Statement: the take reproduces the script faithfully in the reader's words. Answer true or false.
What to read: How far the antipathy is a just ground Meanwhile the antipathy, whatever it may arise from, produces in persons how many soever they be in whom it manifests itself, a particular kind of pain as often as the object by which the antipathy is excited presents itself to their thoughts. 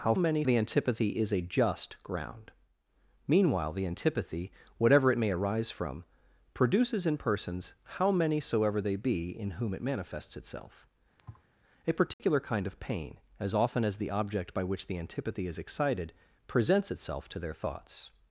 false